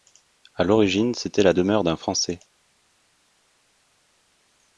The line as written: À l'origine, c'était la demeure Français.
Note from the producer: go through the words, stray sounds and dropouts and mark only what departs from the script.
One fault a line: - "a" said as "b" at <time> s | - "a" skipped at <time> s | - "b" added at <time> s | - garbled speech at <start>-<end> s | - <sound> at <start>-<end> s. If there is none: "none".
- "d'un" added at 1.8 s